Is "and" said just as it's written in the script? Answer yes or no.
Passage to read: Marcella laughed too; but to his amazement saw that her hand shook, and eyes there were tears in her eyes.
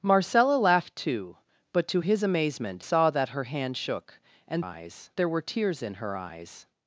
yes